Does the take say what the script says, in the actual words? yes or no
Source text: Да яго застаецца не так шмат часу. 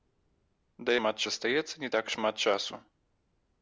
no